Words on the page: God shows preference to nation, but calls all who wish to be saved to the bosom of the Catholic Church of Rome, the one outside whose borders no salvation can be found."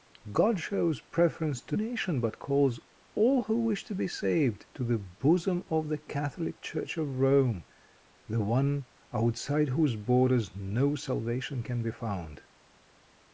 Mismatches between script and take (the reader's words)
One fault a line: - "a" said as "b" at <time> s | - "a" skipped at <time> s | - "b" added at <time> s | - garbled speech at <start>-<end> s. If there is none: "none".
none